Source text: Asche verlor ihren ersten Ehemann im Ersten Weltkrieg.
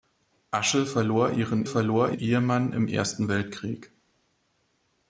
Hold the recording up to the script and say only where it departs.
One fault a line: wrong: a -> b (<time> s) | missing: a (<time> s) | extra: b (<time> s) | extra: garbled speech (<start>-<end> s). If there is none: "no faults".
wrong: ersten -> verlor (1.7 s)